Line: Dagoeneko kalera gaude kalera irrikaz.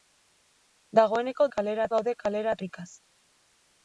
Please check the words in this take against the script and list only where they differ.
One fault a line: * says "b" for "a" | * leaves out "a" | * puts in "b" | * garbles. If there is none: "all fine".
all fine